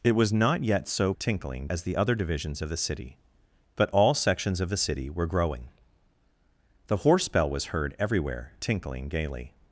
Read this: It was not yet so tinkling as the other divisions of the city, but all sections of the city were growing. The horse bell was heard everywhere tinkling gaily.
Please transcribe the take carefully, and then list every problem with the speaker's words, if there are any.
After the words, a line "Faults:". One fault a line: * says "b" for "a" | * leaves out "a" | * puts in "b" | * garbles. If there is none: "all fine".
It was not yet so tinkling as the other divisions of the city, but all sections of the city were growing. The horse bell was heard everywhere tinkling gaily.
Faults:
all fine